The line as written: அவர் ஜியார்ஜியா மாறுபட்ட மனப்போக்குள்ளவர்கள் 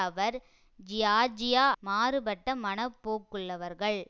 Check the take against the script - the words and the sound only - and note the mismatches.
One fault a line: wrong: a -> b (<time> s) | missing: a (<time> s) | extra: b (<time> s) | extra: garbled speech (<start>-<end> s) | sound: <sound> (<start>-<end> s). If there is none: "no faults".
no faults